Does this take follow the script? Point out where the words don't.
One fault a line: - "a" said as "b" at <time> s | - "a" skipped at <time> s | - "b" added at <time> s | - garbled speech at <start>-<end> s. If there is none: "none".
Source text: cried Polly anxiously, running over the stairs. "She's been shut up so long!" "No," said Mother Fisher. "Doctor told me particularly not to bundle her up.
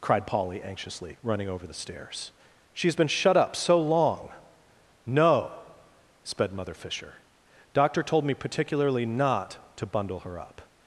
- "said" said as "sped" at 6.2 s